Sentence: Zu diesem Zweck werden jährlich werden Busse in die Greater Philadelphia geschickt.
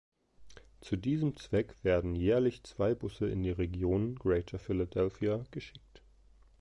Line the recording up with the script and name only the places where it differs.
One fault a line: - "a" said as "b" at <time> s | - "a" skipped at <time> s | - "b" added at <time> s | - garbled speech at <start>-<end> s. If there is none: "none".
- "werden" said as "zwei" at 2.6 s
- "Region" added at 3.5 s